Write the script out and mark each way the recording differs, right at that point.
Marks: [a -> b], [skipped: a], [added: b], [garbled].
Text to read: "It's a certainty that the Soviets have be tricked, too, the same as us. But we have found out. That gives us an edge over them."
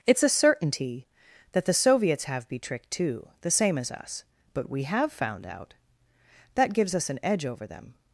"It's a certainty that the Soviets have be tricked, too, the same as us. But we have found out. That gives us an edge over them."